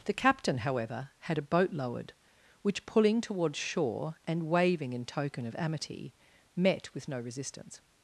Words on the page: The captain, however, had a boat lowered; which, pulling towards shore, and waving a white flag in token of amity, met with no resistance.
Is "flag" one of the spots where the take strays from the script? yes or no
yes